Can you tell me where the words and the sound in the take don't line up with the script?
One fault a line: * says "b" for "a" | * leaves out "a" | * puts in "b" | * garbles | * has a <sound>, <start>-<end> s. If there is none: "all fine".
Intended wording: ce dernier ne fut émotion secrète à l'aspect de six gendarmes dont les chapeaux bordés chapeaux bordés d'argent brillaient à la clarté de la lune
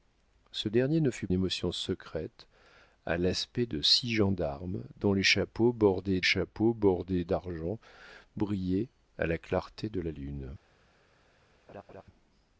* has a laugh, 11.7-12.0 s